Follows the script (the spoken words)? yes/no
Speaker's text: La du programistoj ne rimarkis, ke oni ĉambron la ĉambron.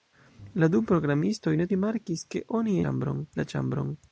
yes